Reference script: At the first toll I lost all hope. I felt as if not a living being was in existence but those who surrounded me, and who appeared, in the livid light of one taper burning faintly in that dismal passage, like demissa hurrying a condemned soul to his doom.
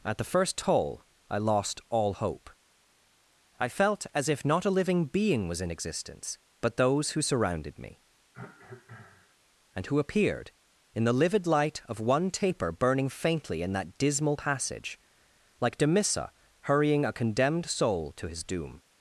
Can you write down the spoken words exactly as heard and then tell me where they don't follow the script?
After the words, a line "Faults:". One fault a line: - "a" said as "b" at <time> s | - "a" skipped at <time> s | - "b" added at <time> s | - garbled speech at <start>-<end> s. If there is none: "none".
At the first toll I lost all hope. I felt as if not a living being was in existence but those who surrounded me, and who appeared, in the livid light of one taper burning faintly in that dismal passage, like demissa hurrying a condemned soul to his doom.
Faults:
none